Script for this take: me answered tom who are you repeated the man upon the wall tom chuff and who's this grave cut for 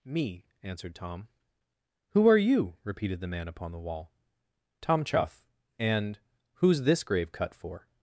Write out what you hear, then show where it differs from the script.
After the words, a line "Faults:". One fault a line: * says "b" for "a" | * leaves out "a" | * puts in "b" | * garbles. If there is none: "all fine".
me answered tom who are you repeated the man upon the wall tom chuff and who's this grave cut for
Faults:
all fine